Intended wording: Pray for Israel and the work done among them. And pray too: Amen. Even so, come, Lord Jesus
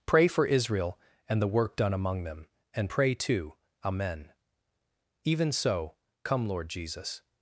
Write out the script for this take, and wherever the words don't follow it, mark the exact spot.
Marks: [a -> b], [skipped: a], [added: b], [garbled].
Pray for Israel and the work done among them. And pray too: Amen. Even so, come, Lord Jesus